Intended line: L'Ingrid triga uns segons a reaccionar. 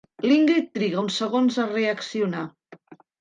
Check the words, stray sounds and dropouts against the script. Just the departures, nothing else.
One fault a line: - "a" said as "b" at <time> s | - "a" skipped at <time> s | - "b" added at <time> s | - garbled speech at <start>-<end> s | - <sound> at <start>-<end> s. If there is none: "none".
none